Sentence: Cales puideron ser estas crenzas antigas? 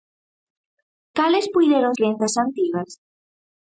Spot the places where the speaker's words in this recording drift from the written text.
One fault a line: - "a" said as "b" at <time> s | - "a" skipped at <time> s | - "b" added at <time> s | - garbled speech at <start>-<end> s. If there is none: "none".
- "ser estas" skipped at 1.9 s